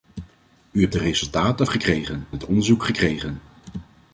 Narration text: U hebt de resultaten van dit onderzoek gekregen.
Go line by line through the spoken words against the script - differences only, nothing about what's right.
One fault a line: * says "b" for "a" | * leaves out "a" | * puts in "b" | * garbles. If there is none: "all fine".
* says "gekregen" for "van"